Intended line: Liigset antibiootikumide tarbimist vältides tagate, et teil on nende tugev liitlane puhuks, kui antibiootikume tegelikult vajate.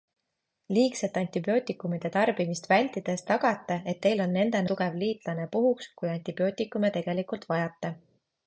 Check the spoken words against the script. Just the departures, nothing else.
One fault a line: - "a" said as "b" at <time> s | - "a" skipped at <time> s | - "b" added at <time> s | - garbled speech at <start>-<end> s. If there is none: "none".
none